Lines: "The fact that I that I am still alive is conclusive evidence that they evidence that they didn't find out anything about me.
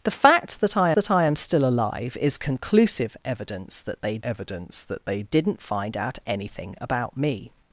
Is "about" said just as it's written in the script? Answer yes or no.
yes